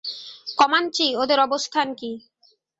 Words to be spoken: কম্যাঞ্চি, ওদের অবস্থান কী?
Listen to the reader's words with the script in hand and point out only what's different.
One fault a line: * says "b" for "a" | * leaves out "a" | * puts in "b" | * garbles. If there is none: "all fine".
all fine